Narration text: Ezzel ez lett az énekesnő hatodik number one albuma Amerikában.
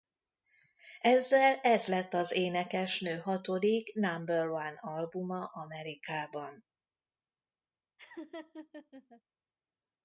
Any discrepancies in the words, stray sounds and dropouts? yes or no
yes